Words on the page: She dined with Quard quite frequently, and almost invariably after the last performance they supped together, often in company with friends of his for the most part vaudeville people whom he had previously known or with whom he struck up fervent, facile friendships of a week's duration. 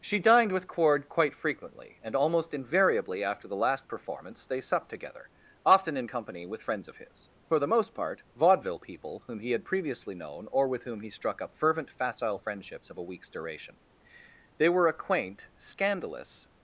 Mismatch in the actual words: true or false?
true